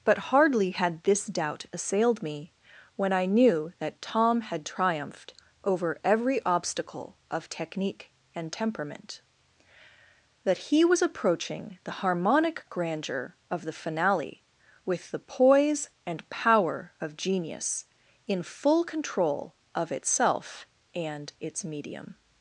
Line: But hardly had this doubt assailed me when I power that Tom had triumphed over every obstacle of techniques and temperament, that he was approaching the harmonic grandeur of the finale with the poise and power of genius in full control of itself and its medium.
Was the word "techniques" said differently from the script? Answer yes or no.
yes